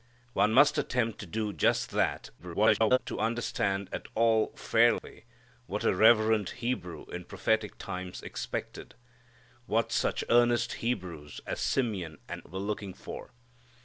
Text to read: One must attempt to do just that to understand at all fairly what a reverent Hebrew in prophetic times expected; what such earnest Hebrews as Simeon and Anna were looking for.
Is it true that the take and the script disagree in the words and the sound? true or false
true